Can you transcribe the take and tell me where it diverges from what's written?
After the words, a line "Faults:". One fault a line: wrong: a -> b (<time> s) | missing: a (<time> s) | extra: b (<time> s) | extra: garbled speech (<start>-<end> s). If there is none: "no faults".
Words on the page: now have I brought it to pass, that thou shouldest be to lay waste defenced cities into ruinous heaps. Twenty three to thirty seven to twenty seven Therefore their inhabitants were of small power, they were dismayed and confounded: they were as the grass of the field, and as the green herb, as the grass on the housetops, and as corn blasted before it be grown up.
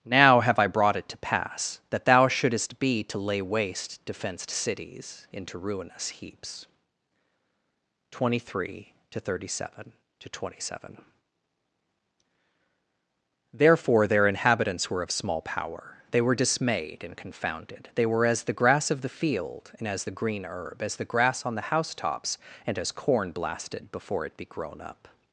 now have I brought it to pass, that thou shouldest be to lay waste defenced cities into ruinous heaps. Twenty three to thirty seven to twenty seven Therefore their inhabitants were of small power, they were dismayed and confounded: they were as the grass of the field, and as the green herb, as the grass on the housetops, and as corn blasted before it be grown up.
Faults:
no faults